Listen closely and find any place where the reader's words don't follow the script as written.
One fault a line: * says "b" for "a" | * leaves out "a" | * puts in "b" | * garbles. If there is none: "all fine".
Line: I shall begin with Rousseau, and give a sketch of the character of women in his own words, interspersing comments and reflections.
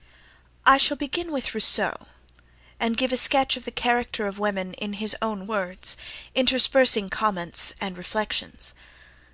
all fine